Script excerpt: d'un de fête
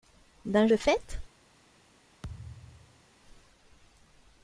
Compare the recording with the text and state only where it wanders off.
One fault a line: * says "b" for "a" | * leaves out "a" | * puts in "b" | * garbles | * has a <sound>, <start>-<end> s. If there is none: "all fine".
* has a thud, 2.2-3.1 s